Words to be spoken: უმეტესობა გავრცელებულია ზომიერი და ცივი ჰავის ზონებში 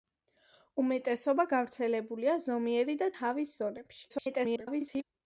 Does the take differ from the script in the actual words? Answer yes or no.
yes